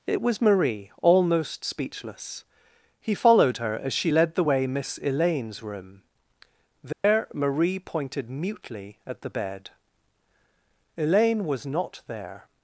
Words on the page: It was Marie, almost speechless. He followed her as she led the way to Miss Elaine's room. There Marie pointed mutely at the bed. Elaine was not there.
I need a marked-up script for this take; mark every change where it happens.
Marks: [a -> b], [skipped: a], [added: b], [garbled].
It was Marie, almost speechless. He followed her as she led the way [skipped: to] Miss Elaine's room. There Marie pointed mutely at the bed. Elaine was not there.